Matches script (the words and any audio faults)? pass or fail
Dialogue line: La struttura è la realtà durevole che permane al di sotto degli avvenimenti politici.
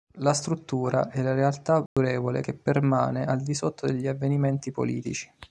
fail